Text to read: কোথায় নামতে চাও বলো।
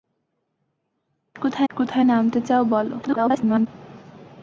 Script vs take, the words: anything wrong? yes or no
yes